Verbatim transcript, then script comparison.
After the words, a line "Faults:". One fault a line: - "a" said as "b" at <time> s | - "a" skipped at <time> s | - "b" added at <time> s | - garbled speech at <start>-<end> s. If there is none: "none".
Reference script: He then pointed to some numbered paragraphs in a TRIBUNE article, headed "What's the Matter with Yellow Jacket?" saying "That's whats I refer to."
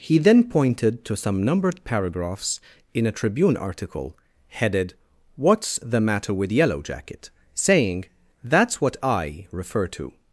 He then pointed to some numbered paragraphs in a TRIBUNE article, headed "What's the Matter with Yellow Jacket?" saying "That's what I refer to."
Faults:
- "whats" said as "what" at 8.8 s